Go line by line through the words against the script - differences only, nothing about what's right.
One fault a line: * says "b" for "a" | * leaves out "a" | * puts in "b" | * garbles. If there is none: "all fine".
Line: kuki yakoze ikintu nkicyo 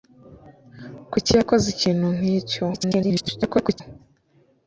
* garbles